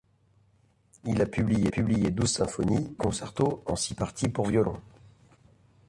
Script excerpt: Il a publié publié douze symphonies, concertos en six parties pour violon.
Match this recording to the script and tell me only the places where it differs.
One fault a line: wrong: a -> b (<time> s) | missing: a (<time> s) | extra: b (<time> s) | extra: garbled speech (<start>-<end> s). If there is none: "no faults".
no faults